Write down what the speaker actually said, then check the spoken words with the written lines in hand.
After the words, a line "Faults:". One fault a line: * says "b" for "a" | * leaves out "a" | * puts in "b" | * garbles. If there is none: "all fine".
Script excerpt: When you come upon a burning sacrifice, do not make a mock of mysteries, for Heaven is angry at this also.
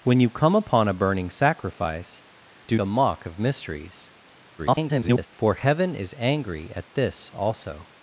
When you come upon a burning sacrifice, do a mock of mysteries, [garbled] for Heaven is angry at this also.
Faults:
* leaves out "not make"
* garbles